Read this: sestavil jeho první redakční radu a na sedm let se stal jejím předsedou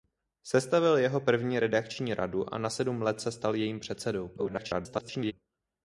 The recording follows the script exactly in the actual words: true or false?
false